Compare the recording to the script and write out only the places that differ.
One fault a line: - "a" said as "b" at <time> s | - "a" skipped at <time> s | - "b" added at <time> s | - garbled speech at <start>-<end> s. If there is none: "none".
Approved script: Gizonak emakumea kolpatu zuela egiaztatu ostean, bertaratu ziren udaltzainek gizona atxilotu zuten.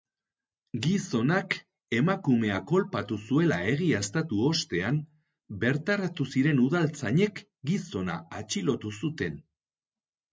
none